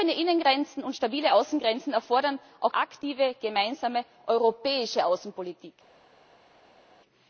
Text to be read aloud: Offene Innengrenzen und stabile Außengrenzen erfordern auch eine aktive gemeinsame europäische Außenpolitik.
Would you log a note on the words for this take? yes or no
yes